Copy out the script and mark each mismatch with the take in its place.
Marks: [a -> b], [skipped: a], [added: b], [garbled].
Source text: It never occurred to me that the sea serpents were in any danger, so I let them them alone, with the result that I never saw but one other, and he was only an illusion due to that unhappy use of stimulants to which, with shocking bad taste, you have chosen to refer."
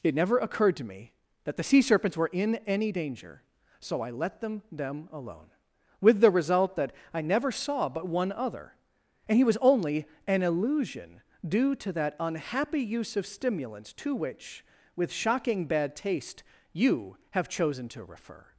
It never occurred to me that the sea serpents were in any danger, so I let them them alone, with the result that I never saw but one other, and he was only an illusion due to that unhappy use of stimulants to which, with shocking bad taste, you have chosen to refer."